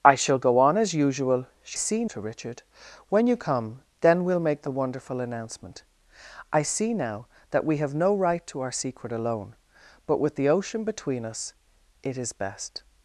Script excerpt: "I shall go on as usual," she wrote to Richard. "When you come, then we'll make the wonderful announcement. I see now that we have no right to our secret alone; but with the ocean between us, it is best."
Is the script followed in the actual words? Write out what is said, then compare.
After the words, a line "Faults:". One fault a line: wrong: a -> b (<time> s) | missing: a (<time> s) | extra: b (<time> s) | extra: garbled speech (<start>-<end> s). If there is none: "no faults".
"I shall go on as usual," she see to Richard. "When you come, then we'll make the wonderful announcement. I see now that we have no right to our secret alone; but with the ocean between us, it is best."
Faults:
wrong: wrote -> see (1.7 s)